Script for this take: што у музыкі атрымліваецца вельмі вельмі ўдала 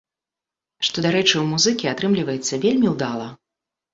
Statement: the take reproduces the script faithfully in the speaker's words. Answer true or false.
false